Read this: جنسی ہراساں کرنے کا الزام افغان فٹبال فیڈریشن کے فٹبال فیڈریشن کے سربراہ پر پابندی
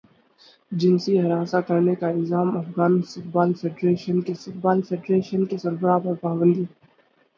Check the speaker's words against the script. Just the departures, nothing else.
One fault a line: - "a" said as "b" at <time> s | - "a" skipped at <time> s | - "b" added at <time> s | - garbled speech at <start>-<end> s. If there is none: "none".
none